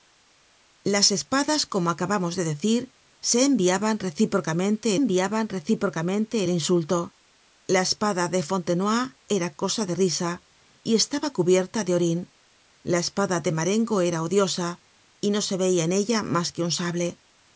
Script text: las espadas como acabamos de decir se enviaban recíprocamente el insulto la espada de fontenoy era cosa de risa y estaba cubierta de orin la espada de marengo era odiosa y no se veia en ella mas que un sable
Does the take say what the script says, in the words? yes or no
no